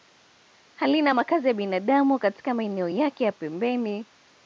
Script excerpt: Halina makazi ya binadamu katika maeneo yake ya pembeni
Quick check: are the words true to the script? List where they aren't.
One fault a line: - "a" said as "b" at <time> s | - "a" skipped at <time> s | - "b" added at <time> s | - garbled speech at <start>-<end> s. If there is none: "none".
none